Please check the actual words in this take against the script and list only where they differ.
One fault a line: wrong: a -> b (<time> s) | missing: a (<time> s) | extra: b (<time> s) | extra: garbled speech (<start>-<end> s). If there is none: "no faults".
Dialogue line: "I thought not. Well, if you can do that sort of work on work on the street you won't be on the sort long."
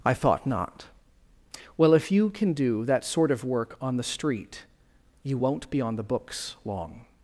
missing: work on (4.0 s)
wrong: sort -> books (6.0 s)